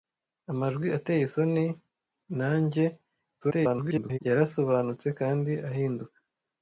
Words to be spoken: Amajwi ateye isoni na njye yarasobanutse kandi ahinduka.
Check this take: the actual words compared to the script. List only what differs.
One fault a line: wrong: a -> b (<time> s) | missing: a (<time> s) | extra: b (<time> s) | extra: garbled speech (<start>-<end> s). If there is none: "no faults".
extra: garbled speech (3.4-4.2 s)